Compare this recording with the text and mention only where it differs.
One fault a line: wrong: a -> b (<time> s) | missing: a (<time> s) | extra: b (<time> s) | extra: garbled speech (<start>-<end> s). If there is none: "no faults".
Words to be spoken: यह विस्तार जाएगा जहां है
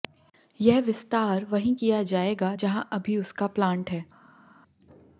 extra: वहीं किया (1.4 s)
extra: अभी उसका प्लांट (2.9 s)